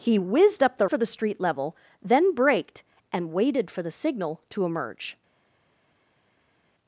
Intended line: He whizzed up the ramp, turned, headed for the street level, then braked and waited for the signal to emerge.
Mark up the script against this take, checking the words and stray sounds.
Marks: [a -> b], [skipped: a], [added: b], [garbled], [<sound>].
He whizzed up the [skipped: ramp, turned, headed] for the street level, then braked and waited for the signal to emerge.